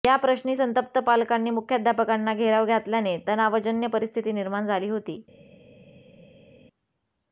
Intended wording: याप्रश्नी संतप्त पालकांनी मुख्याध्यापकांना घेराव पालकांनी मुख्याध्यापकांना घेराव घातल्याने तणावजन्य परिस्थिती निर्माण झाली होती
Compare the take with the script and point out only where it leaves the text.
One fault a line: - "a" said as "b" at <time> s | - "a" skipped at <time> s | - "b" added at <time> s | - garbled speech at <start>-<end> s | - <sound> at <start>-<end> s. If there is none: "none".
- "पालकांनी मुख्याध्यापकांना घेराव" skipped at 2.7 s